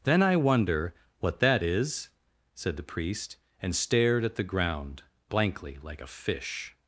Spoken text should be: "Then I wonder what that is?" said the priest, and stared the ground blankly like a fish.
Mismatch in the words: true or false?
true